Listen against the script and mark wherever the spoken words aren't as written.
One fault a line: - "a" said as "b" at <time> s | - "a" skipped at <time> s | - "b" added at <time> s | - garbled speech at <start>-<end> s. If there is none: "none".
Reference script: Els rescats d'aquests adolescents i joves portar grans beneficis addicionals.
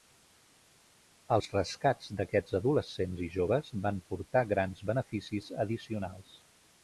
- "van" added at 3.9 s